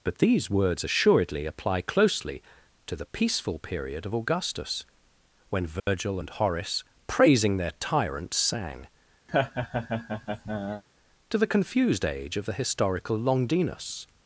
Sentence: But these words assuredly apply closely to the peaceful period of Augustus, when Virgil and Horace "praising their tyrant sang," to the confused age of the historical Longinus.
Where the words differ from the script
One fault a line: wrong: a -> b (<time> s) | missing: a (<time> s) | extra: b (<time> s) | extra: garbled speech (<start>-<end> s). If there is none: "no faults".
no faults